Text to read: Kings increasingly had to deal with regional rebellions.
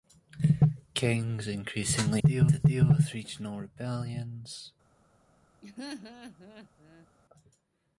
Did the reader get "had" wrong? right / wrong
wrong